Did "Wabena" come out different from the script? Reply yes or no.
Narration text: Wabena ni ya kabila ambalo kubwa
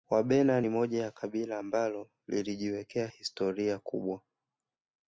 no